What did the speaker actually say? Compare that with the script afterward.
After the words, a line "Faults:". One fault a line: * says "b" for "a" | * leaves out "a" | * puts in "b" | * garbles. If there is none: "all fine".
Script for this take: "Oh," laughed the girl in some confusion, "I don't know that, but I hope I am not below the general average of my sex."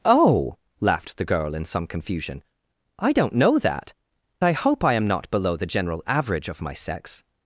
"Oh," laughed the girl in some confusion, "I don't know that, I hope I am not below the general average of my sex."
Faults:
* leaves out "but"